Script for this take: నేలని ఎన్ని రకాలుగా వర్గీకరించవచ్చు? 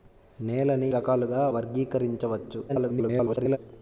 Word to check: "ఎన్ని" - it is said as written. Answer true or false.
false